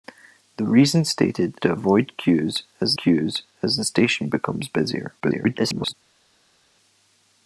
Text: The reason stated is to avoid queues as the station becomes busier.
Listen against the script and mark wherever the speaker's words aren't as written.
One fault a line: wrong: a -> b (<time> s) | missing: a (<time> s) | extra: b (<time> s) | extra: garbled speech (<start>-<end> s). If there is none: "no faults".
missing: is (1.6 s)
extra: queues as (2.9 s)
extra: garbled speech (5.2-5.9 s)